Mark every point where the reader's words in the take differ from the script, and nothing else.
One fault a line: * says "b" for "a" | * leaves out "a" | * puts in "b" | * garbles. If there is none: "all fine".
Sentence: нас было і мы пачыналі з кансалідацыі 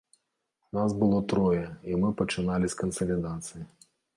* puts in "трое"